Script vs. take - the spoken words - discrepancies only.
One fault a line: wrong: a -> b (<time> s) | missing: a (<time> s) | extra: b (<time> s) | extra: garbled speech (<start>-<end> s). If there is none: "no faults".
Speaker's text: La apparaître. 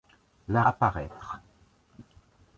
no faults